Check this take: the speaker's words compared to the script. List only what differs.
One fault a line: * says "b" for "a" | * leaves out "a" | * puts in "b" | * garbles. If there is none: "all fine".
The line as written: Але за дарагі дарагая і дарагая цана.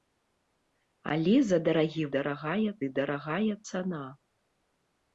all fine